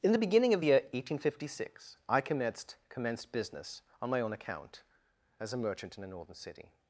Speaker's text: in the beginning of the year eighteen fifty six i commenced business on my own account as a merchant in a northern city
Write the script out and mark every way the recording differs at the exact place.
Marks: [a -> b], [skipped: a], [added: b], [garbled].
in the beginning of the year eighteen fifty six i commenced [added: commenced] business on my own account as a merchant in a northern city